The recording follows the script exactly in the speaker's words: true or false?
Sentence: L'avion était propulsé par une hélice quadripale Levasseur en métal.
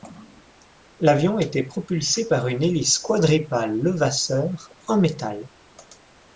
true